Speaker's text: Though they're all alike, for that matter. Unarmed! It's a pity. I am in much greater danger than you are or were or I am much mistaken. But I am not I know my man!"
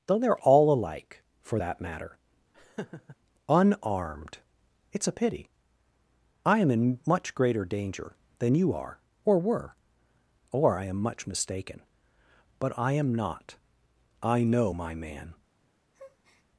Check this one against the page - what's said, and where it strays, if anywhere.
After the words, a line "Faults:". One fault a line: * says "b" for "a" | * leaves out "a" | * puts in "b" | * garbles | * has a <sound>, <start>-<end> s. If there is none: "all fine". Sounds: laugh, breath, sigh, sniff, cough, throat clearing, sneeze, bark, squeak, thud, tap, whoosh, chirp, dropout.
Though they're all alike, for that matter. Unarmed! It's a pity. I am in much greater danger than you are or were or I am much mistaken. But I am not I know my man!"
Faults:
* has a laugh, 2.5-3.2 s
* has a breath, 15.9-16.5 s